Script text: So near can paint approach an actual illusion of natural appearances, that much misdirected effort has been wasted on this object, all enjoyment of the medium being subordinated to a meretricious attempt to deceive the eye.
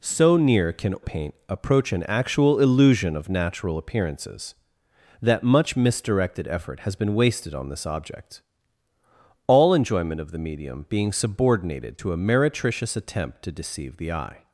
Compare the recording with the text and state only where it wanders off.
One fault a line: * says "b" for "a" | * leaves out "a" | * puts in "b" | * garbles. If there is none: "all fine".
all fine